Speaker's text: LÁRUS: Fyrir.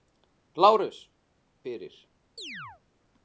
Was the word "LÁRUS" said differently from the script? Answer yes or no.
no